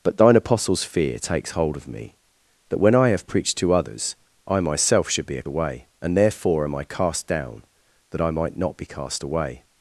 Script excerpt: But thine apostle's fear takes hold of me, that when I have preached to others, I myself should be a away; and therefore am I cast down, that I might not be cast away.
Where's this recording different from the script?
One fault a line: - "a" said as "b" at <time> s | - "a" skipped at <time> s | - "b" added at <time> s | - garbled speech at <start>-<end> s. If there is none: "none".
none